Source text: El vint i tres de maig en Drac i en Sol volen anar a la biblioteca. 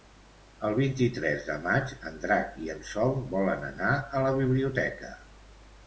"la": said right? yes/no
yes